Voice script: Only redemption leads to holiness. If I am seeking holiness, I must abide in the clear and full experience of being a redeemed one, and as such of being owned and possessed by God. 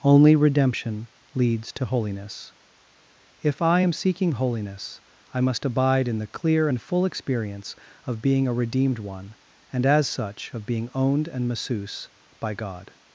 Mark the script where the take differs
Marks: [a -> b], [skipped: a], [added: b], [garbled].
Only redemption leads to holiness. If I am seeking holiness, I must abide in the clear and full experience of being a redeemed one, and as such of being owned and [possessed -> masseuse] by God.